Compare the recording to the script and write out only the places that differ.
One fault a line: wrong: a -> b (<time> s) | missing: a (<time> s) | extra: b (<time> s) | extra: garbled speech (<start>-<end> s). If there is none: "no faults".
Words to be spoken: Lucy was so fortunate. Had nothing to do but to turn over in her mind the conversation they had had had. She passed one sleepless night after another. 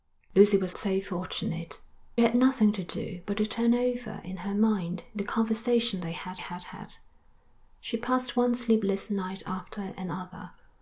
no faults